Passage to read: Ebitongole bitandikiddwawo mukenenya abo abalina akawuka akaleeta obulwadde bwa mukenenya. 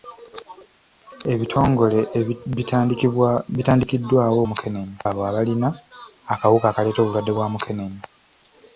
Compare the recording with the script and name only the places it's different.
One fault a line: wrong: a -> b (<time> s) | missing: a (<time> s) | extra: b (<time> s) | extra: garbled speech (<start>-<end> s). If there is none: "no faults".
no faults